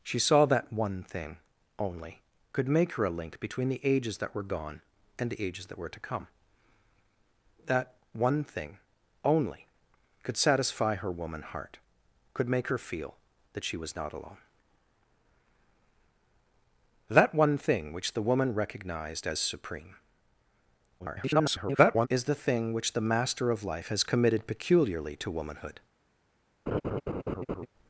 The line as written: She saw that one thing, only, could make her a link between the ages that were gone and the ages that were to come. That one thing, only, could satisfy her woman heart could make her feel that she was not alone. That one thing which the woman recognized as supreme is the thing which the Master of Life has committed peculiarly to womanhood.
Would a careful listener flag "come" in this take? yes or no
no